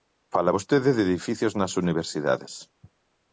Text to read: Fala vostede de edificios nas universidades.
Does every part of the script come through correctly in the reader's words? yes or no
yes